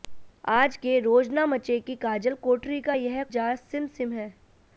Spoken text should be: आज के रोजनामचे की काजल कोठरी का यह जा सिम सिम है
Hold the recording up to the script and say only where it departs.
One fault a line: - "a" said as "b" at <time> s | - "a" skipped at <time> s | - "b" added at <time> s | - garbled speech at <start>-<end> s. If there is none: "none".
none